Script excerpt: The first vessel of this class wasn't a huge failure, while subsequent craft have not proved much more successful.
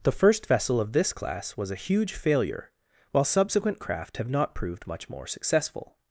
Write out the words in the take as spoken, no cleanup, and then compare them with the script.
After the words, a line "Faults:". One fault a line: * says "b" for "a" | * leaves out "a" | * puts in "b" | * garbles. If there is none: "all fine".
The first vessel of this class was a huge failure, while subsequent craft have not proved much more successful.
Faults:
* says "was" for "wasn't"